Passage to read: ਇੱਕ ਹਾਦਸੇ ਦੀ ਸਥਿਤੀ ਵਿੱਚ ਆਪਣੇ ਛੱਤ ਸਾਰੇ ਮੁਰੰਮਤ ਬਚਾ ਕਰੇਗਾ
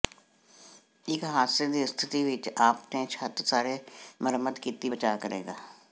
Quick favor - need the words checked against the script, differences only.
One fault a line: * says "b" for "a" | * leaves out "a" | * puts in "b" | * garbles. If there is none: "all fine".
* puts in "ਕੀਤੀ"